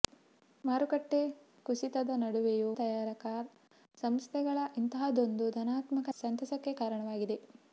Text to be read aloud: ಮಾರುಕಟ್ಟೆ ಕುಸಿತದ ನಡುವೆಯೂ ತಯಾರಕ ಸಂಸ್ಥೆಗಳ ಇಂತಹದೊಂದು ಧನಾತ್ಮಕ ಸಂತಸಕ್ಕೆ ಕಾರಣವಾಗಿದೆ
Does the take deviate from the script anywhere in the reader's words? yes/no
no